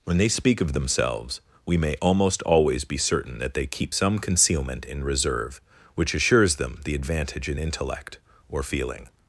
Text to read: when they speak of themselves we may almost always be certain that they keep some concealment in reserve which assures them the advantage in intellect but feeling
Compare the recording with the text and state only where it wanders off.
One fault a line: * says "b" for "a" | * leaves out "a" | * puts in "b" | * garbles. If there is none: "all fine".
* says "or" for "but"